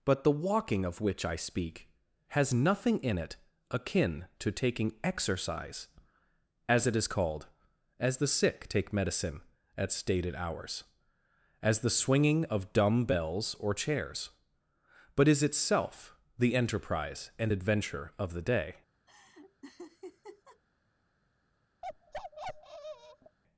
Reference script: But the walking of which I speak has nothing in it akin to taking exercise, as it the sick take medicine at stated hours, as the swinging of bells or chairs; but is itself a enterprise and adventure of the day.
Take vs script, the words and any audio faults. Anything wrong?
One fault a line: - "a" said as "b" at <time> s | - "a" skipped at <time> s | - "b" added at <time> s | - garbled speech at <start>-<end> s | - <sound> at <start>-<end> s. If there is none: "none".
- "is called as" added at 7.0 s
- "dumb" added at 12.7 s
- "a" said as "the" at 16.4 s
- laugh at 19.1-20.6 s
- bark at 21.8-23.4 s